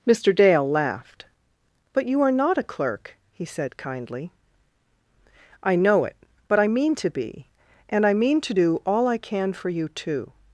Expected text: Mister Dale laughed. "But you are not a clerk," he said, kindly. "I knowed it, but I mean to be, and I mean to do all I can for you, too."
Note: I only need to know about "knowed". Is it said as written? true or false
false